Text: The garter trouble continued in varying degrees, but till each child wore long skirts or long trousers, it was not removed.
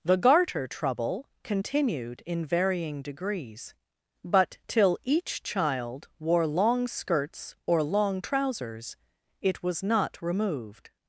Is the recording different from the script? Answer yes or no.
no